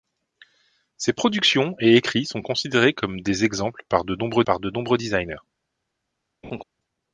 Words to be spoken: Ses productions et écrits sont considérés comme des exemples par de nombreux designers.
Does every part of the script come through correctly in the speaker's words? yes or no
no